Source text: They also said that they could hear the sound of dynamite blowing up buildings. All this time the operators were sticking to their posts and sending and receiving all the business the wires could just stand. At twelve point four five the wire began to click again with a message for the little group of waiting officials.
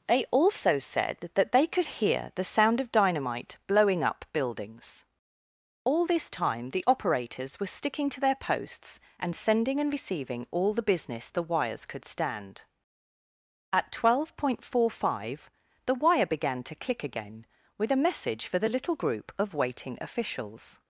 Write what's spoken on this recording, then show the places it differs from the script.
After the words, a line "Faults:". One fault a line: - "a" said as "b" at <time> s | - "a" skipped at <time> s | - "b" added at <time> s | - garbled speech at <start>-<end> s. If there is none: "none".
They also said that they could hear the sound of dynamite blowing up buildings. All this time the operators were sticking to their posts and sending and receiving all the business the wires could stand. At twelve point four five the wire began to click again with a message for the little group of waiting officials.
Faults:
- "just" skipped at 12.1 s